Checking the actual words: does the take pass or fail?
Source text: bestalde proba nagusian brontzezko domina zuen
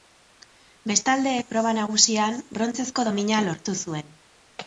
fail